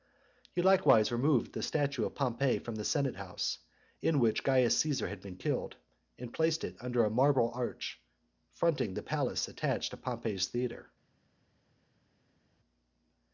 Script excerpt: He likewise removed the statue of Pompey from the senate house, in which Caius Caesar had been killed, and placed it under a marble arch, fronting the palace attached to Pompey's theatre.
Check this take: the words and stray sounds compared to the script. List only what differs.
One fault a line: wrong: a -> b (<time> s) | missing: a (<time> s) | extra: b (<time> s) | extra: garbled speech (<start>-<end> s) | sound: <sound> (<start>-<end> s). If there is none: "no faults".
no faults